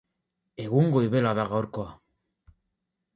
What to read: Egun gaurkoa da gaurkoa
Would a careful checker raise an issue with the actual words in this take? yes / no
yes